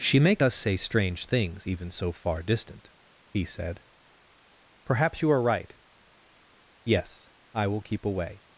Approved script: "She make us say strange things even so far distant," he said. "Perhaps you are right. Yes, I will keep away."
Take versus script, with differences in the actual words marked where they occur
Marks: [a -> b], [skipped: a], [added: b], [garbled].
"She make us say strange things even so far distant," he said. "Perhaps you are right. Yes, I will keep away."